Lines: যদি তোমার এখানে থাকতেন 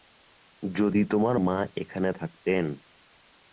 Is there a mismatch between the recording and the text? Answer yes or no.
yes